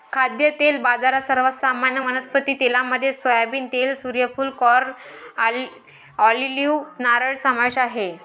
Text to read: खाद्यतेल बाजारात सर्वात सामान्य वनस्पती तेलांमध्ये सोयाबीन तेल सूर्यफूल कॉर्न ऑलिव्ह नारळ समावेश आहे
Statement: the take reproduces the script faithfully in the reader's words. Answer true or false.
true